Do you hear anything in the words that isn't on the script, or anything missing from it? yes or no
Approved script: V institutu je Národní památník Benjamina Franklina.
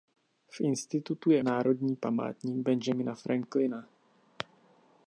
no